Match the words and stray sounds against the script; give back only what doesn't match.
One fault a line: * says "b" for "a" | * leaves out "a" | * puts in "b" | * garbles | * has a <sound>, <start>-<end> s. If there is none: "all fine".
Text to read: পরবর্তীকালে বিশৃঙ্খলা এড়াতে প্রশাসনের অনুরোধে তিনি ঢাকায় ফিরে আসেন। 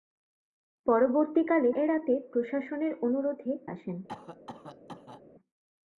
* leaves out "বিশৃঙ্খলা"
* leaves out "তিনি ঢাকায় ফিরে"
* has a cough, 4.1-5.2 s